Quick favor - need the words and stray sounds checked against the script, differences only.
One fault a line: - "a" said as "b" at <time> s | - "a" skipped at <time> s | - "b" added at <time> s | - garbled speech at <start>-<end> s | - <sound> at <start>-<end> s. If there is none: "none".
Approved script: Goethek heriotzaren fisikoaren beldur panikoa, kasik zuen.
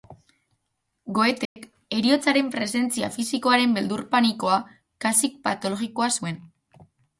- dropout at 1.5-1.6 s
- "presentzia" added at 2.5 s
- "patologikoa" added at 5.5 s